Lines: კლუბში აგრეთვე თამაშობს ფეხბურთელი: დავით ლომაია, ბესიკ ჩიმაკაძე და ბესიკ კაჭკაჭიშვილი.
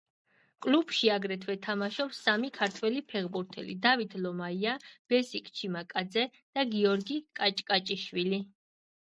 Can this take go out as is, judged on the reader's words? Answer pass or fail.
fail